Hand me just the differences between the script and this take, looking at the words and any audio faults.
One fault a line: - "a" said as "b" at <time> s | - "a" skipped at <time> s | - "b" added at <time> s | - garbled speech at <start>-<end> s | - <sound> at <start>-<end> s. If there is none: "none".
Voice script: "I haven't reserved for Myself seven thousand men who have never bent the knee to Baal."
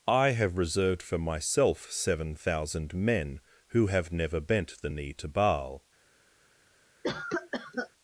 - "haven't" said as "have" at 0.3 s
- cough at 7.0-7.9 s